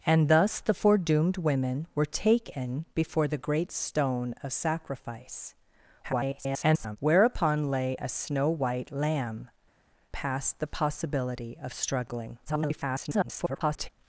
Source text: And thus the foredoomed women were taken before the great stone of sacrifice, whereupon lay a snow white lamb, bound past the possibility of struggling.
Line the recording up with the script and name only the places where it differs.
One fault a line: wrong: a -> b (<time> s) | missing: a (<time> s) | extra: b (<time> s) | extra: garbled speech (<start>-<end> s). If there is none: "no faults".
extra: garbled speech (6.0-7.0 s)
missing: bound (9.5 s)
extra: garbled speech (12.5-13.9 s)